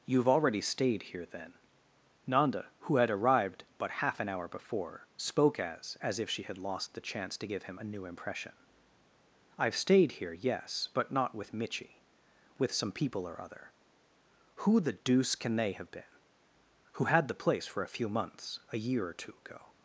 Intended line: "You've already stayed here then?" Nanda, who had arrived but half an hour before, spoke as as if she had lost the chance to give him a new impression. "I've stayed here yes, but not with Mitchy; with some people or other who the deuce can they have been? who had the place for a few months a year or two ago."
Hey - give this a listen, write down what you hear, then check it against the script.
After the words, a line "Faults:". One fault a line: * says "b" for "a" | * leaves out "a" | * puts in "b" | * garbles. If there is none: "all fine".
"You've already stayed here then?" Nanda, who had arrived but half an hour before, spoke as as if she had lost the chance to give him a new impression. "I've stayed here yes, but not with Mitchy; with some people or other who the deuce can they have been? who had the place for a few months a year or two ago."
Faults:
all fine